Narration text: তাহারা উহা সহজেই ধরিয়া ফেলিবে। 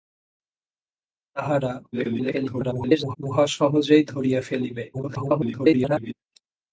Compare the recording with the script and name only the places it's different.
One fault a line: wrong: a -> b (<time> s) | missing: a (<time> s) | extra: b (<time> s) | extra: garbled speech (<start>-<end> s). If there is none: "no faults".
extra: garbled speech (1.9-3.2 s)
extra: garbled speech (4.9-6.1 s)